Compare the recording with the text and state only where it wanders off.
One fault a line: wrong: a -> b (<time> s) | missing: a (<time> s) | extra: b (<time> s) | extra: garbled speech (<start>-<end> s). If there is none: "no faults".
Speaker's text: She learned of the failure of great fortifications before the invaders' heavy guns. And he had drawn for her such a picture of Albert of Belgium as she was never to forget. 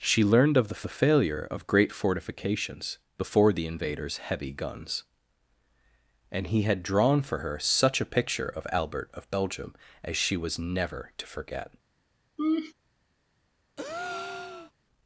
extra: the (0.8 s)